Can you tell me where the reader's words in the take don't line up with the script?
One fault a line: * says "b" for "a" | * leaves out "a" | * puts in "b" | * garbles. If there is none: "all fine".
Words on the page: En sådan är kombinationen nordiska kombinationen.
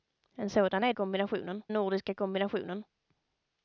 all fine